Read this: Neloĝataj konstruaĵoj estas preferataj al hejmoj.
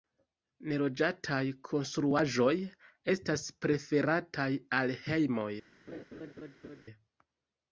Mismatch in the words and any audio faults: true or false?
true